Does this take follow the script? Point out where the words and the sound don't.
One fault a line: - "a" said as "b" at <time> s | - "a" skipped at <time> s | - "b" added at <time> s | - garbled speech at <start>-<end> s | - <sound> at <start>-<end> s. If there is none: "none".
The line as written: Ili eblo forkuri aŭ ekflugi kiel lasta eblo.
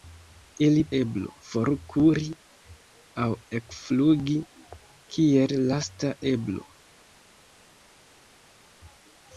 none